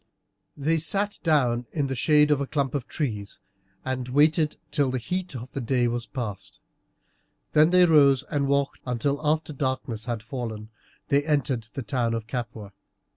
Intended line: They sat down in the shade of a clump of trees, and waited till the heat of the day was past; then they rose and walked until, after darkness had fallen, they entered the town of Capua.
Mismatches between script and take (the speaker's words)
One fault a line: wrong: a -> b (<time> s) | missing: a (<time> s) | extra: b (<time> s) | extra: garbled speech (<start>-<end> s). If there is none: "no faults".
no faults